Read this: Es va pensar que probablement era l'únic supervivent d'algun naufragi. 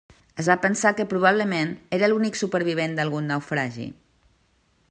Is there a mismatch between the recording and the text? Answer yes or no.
no